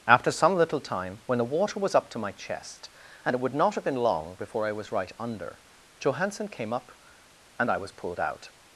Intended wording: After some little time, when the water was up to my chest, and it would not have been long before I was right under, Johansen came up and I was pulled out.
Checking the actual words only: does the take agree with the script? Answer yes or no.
yes